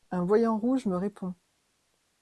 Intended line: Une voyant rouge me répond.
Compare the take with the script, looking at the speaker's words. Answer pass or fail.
fail